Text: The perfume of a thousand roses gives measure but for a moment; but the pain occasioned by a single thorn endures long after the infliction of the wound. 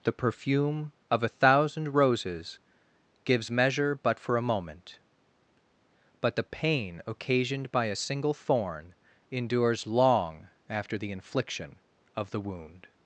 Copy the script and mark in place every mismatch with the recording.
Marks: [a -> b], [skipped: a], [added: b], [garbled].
The perfume of a thousand roses gives measure but for a moment; but the pain occasioned by a single thorn endures long after the infliction of the wound.